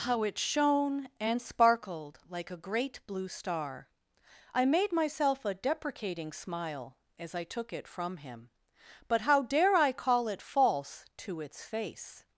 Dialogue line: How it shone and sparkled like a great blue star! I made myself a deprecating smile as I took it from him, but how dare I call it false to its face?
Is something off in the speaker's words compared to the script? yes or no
no